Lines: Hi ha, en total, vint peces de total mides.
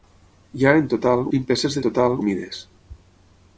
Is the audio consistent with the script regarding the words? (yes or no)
yes